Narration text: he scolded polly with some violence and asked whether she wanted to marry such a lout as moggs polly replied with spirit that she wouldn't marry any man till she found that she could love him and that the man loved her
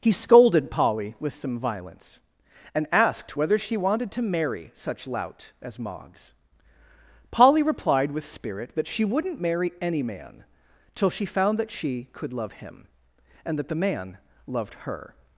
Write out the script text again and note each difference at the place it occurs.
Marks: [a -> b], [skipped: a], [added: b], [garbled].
he scolded polly with some violence and asked whether she wanted to marry such [skipped: a] lout as moggs polly replied with spirit that she wouldn't marry any man till she found that she could love him and that the man loved her